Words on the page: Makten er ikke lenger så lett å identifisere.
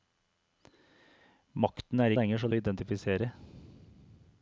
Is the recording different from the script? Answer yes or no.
yes